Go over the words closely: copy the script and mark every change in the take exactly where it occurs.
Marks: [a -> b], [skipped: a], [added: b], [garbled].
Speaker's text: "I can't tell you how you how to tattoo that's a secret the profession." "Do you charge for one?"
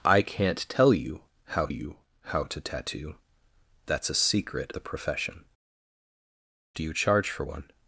"I can't tell you how you how to tattoo that's a secret the profession." "Do you charge for one?"